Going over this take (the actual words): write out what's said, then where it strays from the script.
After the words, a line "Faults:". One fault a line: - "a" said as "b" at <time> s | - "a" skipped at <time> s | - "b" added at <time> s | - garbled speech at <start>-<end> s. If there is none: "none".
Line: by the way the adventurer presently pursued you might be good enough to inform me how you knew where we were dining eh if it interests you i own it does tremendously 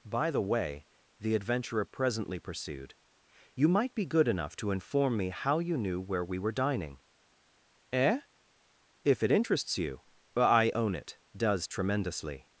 by the way the adventurer presently pursued you might be good enough to inform me how you knew where we were dining eh if it interests you i own it does tremendously
Faults:
none